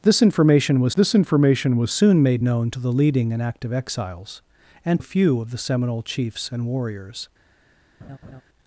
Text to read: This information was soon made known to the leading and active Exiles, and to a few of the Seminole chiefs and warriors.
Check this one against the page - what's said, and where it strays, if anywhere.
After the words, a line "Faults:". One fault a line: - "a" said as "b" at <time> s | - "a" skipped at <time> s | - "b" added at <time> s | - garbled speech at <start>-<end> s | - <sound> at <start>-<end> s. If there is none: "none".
This information was this information was soon made known to the leading and active Exiles, and a few of the Seminole chiefs and warriors.
Faults:
- "this information was" added at 0.9 s
- "to" skipped at 5.0 s
- laugh at 8.0-8.4 s